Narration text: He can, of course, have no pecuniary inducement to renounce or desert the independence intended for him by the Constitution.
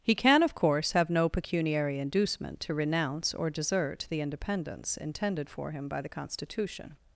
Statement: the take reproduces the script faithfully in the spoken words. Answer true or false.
true